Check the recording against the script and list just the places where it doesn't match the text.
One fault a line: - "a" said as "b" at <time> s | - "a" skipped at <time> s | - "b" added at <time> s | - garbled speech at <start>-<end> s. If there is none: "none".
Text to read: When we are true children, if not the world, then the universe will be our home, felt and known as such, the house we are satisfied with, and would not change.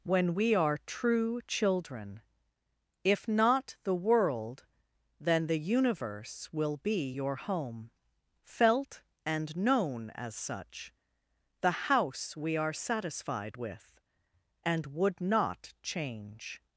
- "our" said as "your" at 7.1 s